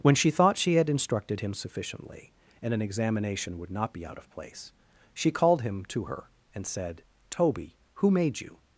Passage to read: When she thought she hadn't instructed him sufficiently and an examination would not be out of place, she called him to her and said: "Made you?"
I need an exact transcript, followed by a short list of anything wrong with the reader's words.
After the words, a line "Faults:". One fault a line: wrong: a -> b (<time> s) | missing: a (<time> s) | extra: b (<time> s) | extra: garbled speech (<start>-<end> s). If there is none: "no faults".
When she thought she had instructed him sufficiently and an examination would not be out of place, she called him to her and said: "Toby, who made you?"
Faults:
wrong: hadn't -> had (0.8 s)
extra: Toby who (7.3 s)